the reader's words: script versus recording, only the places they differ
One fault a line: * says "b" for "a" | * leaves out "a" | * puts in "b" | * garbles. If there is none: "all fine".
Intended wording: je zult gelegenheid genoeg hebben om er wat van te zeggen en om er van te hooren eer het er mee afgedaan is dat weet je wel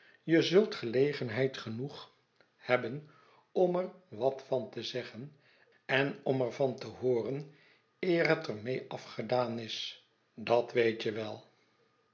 all fine